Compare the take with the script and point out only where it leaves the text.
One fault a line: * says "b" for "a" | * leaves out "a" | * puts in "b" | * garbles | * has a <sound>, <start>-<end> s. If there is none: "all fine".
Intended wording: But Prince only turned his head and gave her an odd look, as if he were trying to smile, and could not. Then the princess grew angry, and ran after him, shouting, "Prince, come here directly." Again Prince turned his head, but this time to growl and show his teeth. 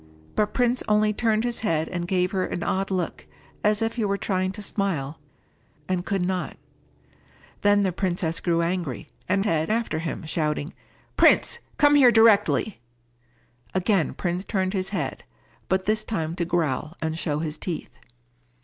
* says "head" for "ran"